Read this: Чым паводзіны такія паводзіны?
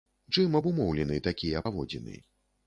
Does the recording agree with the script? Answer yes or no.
no